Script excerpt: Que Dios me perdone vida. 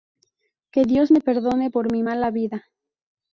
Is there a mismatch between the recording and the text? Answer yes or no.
yes